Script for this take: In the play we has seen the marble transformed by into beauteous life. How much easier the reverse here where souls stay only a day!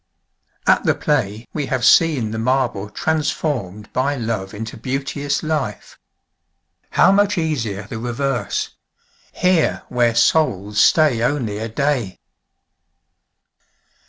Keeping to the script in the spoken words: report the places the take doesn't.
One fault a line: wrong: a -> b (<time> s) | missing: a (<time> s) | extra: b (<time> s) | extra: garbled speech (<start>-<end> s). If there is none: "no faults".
wrong: In -> At (0.7 s)
wrong: has -> have (1.7 s)
extra: love (4.2 s)